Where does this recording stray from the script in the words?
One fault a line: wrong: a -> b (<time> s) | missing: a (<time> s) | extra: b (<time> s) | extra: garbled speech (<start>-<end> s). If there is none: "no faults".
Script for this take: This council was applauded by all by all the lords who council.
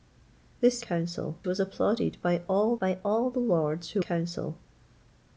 no faults